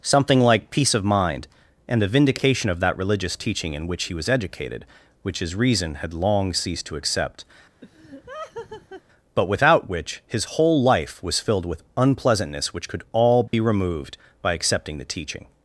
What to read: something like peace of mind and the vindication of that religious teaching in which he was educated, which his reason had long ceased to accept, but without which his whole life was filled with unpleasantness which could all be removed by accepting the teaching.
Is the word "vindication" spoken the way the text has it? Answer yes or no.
yes